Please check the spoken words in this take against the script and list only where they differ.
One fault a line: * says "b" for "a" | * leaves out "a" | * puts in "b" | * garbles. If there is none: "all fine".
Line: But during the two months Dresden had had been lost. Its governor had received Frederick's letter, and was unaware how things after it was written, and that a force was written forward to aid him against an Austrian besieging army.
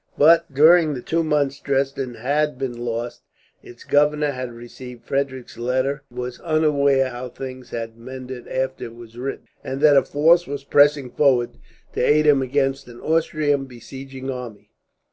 * leaves out "had"
* puts in "had mended"
* says "pressing" for "written"